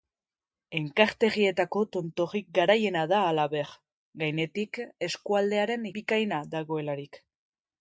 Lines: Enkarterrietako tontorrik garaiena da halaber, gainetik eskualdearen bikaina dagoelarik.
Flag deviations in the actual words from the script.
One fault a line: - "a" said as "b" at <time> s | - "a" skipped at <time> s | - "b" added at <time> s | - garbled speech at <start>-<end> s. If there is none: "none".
none